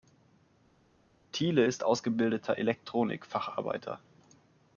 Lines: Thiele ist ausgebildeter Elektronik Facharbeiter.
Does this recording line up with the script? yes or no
yes